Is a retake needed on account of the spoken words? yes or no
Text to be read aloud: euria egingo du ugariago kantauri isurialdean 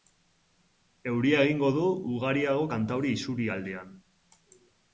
no